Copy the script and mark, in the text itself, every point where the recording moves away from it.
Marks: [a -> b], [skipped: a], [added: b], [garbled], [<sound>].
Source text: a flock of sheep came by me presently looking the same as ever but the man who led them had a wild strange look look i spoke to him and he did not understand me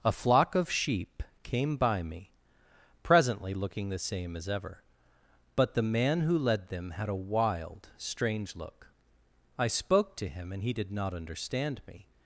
a flock of sheep came by me presently looking the same as ever but the man who led them had a wild strange look [skipped: look] i spoke to him and he did not understand me